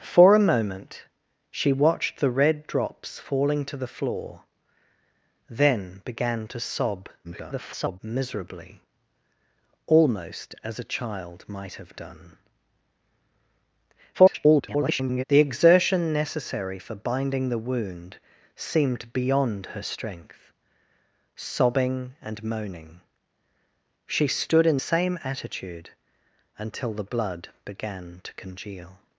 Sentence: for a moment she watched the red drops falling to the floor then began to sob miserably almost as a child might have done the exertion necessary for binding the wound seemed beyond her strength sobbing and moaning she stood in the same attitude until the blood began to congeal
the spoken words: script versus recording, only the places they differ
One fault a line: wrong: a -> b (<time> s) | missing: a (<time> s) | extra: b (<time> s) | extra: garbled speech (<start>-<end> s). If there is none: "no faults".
extra: garbled speech (7.2-8.0 s)
extra: garbled speech (14.1-15.2 s)
missing: the (24.8 s)